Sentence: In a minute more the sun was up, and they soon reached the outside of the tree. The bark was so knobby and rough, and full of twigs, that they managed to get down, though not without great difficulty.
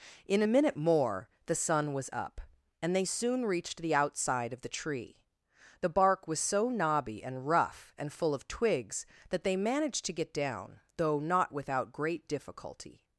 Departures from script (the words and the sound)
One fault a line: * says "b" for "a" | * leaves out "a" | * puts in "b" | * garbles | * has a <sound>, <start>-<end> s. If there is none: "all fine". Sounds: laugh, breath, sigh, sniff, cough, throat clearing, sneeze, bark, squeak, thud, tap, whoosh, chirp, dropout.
all fine